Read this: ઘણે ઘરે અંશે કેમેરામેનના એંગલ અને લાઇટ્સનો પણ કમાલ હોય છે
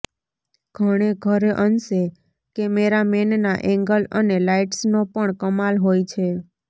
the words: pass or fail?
pass